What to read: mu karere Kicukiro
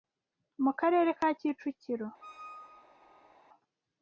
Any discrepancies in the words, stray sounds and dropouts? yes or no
yes